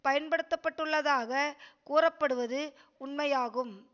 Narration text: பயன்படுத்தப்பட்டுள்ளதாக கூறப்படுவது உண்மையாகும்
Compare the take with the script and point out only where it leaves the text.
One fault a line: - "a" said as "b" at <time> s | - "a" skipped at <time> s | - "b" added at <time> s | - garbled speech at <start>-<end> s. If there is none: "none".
none